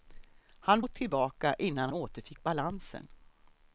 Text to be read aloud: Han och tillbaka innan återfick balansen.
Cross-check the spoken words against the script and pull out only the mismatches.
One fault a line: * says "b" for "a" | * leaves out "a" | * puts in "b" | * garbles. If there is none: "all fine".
all fine